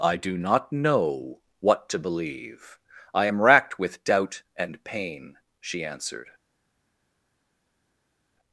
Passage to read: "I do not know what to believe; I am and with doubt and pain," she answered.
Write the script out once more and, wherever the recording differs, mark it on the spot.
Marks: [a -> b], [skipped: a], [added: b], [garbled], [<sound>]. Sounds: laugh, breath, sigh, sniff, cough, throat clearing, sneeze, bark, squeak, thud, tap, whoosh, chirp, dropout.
"I do not know what to believe; I am [and -> racked] with doubt and pain," she answered.